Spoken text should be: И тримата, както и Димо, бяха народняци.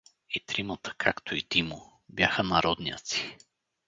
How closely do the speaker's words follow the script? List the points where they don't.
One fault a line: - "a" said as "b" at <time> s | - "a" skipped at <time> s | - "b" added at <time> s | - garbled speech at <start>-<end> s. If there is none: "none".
none